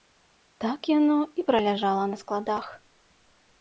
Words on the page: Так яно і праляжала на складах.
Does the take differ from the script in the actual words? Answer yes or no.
no